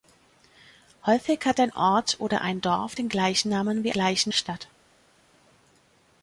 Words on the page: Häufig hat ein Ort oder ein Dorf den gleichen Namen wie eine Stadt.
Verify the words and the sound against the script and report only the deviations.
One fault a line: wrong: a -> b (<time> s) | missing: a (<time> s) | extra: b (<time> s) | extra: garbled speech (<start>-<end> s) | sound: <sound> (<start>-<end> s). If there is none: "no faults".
wrong: eine -> gleichen (3.9 s)